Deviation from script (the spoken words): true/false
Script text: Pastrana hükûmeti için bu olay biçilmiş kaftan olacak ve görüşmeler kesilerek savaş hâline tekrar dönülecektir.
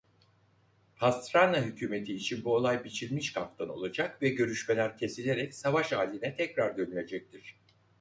false